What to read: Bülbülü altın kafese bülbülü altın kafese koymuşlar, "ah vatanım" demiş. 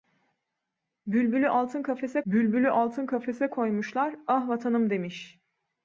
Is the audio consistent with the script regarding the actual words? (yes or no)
yes